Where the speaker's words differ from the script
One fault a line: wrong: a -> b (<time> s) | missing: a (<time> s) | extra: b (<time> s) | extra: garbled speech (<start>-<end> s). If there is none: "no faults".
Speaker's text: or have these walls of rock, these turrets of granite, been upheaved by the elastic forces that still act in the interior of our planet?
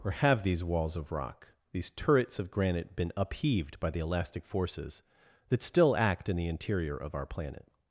no faults